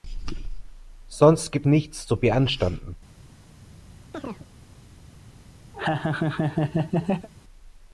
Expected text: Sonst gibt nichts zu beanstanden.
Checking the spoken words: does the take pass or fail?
pass